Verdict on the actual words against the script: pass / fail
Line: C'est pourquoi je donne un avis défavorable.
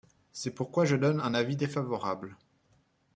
pass